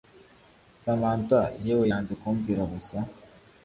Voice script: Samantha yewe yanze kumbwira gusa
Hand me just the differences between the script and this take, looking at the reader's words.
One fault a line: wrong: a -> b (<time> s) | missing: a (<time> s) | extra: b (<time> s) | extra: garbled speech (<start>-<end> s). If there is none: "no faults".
no faults